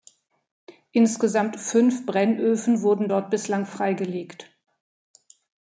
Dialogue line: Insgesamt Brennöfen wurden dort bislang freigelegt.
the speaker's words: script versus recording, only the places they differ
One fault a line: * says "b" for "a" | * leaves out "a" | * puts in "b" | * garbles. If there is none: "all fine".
* puts in "fünf"